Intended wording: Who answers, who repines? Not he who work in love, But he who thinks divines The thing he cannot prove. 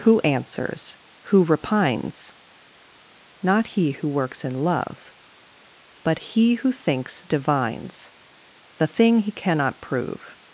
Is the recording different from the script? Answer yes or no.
yes